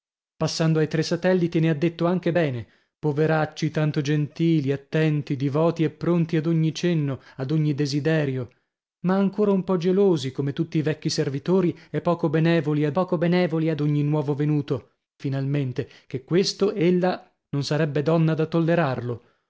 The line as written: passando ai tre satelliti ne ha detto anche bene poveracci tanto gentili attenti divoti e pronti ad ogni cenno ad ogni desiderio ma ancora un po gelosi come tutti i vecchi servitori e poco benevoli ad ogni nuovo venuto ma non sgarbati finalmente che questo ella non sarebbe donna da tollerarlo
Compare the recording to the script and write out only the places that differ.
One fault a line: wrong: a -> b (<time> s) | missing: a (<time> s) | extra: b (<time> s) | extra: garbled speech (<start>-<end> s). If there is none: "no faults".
extra: poco benevoli ad (12.9 s)
missing: ma non sgarbati (14.9 s)